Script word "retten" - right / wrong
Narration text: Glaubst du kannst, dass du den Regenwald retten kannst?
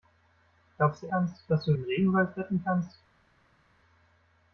right